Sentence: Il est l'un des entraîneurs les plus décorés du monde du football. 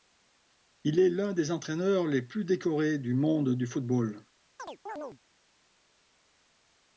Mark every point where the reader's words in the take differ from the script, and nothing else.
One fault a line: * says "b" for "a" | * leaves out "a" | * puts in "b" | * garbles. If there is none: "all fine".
all fine